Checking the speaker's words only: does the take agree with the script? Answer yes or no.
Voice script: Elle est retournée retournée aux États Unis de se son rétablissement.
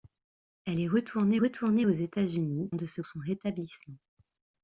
yes